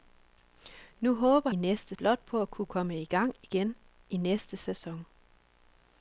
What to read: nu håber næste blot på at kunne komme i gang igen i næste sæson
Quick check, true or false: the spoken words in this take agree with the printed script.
true